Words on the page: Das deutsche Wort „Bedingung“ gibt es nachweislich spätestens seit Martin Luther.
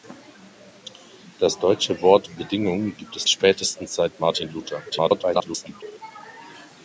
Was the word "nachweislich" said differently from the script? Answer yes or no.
yes